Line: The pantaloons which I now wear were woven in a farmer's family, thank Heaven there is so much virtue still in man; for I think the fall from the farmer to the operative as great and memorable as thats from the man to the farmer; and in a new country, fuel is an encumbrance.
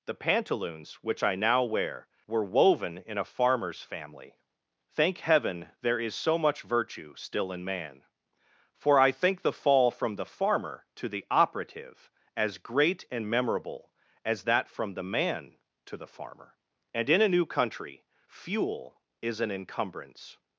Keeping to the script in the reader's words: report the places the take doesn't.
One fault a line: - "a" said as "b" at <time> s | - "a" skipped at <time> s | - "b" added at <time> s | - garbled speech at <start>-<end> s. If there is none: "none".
- "thats" said as "that" at 14.4 s